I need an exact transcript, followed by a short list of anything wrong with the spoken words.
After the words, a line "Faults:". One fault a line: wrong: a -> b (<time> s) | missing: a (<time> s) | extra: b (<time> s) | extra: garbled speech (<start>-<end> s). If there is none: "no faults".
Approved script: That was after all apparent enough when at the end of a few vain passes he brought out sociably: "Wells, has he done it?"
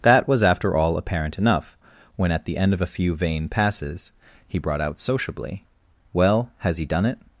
That was after all apparent enough when at the end of a few vain passes he brought out sociably: "Well, has he done it?"
Faults:
wrong: Wells -> Well (6.1 s)